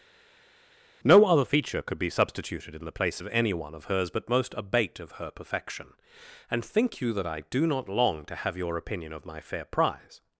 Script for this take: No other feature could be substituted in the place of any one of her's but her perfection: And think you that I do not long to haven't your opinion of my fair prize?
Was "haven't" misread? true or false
true